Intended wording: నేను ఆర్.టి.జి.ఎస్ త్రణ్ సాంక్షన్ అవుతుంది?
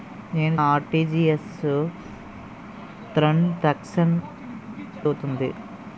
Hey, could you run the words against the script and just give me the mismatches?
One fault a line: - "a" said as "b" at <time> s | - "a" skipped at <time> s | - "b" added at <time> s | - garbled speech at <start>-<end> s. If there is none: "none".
none